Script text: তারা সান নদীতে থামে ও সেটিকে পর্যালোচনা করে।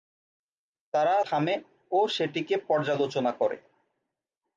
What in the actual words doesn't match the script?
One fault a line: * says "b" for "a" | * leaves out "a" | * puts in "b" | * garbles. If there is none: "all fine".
* leaves out "সান নদীতে"